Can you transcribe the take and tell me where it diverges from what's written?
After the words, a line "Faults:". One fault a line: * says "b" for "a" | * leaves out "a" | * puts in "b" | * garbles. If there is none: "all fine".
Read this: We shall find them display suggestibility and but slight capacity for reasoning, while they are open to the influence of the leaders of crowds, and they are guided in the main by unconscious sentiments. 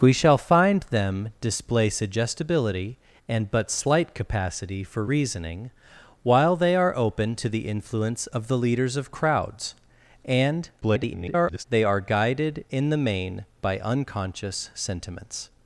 We shall find them display suggestibility and but slight capacity for reasoning, while they are open to the influence of the leaders of crowds, and [garbled] they are guided in the main by unconscious sentiments.
Faults:
* garbles